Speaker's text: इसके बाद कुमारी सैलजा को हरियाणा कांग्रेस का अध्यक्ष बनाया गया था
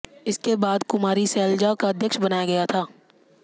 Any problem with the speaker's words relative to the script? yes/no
yes